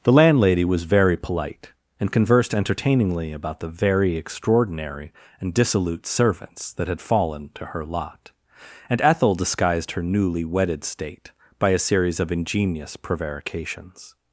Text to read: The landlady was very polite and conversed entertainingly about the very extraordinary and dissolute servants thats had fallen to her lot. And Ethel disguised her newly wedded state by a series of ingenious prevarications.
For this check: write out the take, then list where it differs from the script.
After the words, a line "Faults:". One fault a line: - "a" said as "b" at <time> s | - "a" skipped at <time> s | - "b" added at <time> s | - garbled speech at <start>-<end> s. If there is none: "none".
The landlady was very polite and conversed entertainingly about the very extraordinary and dissolute servants that had fallen to her lot. And Ethel disguised her newly wedded state by a series of ingenious prevarications.
Faults:
- "thats" said as "that" at 6.7 s